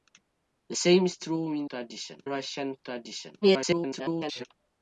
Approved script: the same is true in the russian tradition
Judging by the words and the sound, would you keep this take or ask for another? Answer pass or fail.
fail